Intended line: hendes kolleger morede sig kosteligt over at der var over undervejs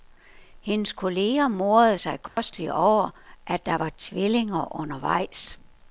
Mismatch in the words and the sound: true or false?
true